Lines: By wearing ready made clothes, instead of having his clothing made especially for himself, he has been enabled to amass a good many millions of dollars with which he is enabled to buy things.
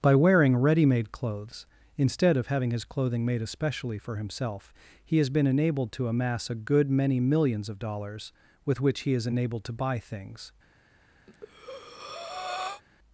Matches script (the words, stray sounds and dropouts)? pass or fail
fail